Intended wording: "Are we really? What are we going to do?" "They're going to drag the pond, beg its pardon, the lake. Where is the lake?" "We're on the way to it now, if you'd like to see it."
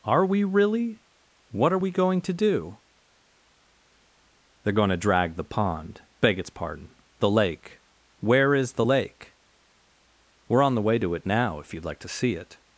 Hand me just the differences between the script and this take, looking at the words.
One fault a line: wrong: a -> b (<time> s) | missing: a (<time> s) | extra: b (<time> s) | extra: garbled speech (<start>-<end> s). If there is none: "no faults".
no faults